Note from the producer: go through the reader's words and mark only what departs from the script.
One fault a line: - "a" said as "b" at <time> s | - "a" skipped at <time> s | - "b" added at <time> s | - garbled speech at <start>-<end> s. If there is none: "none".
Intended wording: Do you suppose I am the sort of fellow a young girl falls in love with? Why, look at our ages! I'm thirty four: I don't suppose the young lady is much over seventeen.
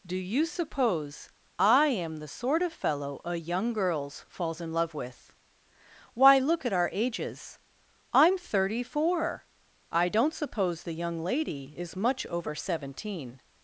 - "girl" said as "girls" at 3.7 s